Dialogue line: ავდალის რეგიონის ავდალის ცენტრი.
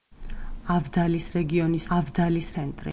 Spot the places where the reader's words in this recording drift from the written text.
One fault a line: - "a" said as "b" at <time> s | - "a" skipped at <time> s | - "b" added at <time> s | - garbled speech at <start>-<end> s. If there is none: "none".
none